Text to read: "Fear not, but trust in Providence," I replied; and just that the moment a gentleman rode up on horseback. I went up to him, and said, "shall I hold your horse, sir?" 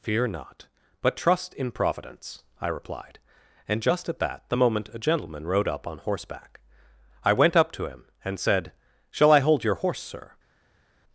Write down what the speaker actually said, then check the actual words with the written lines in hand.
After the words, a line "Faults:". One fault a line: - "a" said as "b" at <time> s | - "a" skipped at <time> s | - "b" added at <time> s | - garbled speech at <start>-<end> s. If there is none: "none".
"Fear not, but trust in Providence," I replied; and just at that the moment a gentleman rode up on horseback. I went up to him, and said, "shall I hold your horse, sir?"
Faults:
- "at" added at 4.1 s